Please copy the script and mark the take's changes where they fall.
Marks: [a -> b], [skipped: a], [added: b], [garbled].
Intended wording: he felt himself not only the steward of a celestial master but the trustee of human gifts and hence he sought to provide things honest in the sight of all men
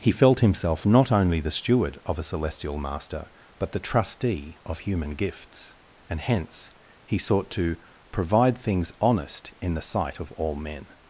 he felt himself not only the steward of a celestial master but the trustee of human gifts and hence he sought to provide things honest in the sight of all men